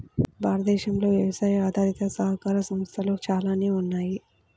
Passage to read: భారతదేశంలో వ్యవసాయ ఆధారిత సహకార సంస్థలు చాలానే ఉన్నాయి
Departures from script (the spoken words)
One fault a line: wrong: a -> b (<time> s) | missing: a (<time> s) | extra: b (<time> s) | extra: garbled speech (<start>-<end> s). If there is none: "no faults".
no faults